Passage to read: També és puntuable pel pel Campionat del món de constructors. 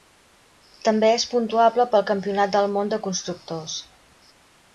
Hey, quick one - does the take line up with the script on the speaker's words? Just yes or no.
no